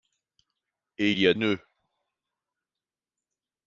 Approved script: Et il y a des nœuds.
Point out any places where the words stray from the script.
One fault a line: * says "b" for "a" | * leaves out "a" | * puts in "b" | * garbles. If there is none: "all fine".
* leaves out "des"